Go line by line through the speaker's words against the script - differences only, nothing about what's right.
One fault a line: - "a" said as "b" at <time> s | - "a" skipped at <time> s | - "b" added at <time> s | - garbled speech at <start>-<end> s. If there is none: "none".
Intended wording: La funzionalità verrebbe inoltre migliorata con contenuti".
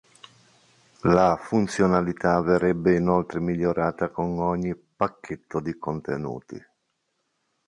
- "ogni pacchetto di" added at 4.4 s